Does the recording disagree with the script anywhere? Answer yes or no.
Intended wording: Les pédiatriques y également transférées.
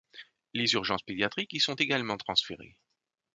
yes